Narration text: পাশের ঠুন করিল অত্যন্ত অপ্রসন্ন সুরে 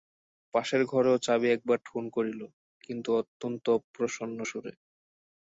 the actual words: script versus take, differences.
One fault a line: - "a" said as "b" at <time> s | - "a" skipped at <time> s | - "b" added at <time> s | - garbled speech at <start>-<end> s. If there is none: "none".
- "ঘরেও চাবি একবার" added at 0.8 s
- "কিন্তু" added at 2.8 s